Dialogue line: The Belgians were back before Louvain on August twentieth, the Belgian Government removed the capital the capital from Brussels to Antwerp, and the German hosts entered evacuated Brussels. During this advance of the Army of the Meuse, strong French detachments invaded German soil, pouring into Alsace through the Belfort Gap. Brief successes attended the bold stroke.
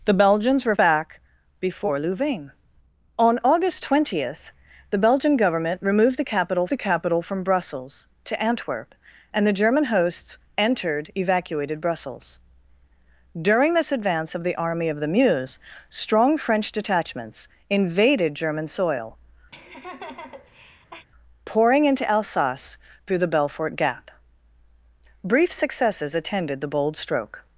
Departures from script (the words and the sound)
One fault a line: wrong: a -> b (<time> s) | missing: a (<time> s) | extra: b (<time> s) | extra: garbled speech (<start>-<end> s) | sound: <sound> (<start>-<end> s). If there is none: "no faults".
sound: laugh (19.5-21.1 s)